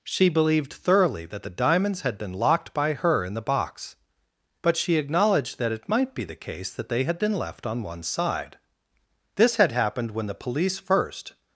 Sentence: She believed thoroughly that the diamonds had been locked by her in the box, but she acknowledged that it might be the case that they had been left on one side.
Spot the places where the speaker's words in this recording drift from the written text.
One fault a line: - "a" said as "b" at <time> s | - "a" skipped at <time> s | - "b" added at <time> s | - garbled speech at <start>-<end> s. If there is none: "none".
- "This had happened when the police first" added at 9.3 s